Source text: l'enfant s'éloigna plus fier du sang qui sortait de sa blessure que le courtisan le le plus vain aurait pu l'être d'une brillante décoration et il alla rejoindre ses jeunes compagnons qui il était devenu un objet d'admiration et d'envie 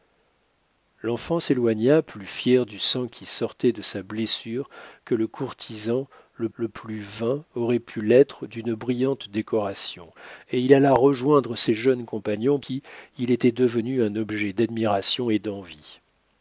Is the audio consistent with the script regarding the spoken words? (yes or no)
yes